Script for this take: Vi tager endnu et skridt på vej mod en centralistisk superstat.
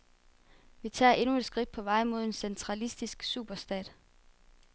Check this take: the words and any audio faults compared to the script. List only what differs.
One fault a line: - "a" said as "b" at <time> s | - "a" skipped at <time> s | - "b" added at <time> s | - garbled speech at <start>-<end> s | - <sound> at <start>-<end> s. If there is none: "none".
none